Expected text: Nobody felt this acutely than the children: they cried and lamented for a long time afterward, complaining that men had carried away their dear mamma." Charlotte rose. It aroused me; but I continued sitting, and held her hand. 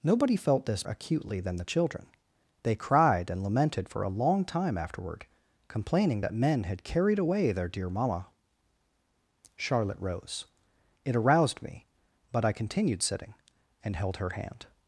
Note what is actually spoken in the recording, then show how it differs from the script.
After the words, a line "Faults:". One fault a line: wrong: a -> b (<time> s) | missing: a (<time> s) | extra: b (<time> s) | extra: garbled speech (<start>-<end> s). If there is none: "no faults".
Nobody felt this acutely than the children: they cried and lamented for a long time afterward, complaining that men had carried away their dear mamma." Charlotte rose. It aroused me; but I continued sitting, and held her hand.
Faults:
no faults